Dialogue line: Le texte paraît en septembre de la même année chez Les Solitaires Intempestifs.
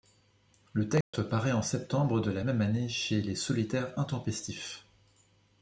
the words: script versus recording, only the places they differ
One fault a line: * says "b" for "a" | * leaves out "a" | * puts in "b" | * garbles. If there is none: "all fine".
all fine